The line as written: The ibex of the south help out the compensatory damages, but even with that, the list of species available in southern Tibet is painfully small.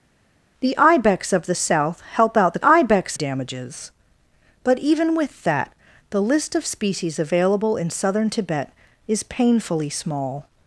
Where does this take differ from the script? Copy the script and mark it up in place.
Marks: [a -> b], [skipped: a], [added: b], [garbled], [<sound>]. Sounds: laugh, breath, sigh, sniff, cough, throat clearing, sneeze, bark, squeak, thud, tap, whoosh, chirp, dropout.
The ibex of the south help out the [compensatory -> ibex] damages, but even with that, the list of species available in southern Tibet is painfully small.